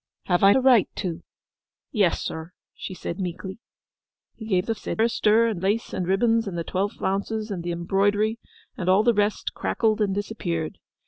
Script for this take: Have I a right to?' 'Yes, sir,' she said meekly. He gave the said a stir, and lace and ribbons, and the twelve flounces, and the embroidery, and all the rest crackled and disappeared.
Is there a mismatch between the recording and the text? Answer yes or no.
no